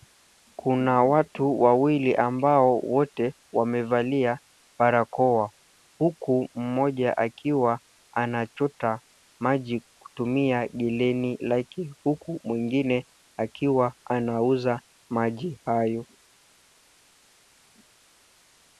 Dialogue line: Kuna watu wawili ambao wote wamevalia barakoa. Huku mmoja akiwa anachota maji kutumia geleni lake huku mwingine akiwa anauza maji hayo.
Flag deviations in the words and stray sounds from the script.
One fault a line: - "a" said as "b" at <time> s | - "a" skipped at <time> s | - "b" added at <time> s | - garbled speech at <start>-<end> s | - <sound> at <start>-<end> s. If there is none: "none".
none